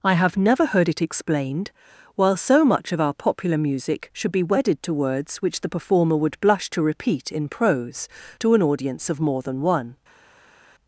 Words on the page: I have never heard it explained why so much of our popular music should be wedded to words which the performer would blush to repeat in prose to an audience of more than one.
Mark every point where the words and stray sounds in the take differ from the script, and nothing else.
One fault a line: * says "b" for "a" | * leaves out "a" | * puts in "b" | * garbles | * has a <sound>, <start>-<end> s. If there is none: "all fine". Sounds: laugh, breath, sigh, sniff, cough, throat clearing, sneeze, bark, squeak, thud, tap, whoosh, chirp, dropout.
* says "while" for "why"